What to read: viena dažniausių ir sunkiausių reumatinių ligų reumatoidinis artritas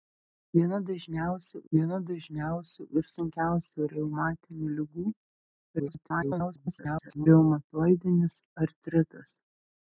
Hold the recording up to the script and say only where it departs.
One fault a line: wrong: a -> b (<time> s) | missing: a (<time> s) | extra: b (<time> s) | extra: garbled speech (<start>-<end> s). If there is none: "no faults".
extra: viena dažniausių (1.8 s)
extra: garbled speech (5.8-7.3 s)